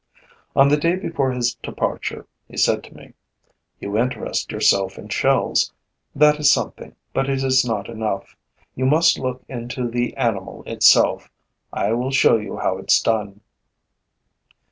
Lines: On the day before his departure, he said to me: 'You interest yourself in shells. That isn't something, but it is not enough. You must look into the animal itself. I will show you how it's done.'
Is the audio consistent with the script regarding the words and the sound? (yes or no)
no